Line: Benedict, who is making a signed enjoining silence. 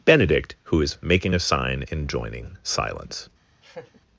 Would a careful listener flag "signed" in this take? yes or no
yes